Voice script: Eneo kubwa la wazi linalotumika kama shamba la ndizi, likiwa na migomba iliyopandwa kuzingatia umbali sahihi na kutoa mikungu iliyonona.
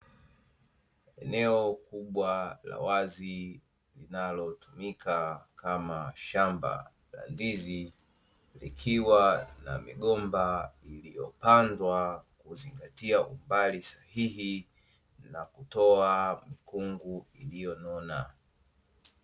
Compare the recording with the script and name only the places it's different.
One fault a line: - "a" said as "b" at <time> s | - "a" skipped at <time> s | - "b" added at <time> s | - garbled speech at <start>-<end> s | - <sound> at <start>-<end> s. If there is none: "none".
none